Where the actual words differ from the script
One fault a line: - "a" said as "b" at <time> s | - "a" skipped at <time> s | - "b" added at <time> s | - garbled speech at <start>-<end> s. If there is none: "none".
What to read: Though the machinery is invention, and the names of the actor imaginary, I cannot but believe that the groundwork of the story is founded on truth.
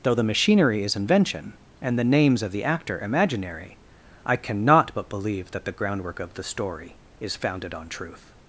none